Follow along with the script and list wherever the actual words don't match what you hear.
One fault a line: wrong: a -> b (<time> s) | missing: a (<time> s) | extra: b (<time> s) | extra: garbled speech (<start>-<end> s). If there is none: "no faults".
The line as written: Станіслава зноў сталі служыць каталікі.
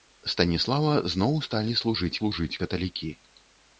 extra: служыць (2.2 s)